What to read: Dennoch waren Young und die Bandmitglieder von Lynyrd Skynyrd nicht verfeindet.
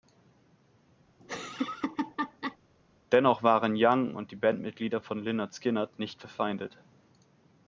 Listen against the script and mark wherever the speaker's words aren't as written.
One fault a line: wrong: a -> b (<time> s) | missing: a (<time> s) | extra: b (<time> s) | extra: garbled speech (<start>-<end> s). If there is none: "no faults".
no faults